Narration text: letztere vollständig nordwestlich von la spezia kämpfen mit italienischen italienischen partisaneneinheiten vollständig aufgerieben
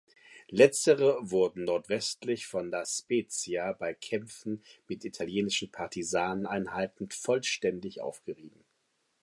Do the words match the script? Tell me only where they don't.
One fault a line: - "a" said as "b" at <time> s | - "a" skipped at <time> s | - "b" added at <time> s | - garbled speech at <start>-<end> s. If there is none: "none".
- "vollständig" said as "wurden" at 1.3 s
- "bei" added at 3.7 s
- "italienischen" skipped at 5.7 s